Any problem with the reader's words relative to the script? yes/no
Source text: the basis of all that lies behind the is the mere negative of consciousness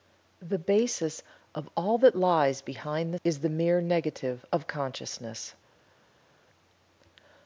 no